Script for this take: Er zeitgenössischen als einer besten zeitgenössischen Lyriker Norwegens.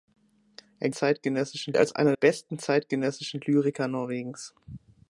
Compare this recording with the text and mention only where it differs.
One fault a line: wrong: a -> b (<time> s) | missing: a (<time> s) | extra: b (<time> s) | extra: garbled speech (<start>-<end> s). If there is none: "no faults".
no faults